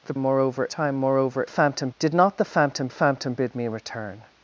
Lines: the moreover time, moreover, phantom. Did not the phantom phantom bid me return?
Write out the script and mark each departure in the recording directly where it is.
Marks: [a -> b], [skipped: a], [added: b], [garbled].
the moreover time, moreover, phantom. Did not the phantom phantom bid me return?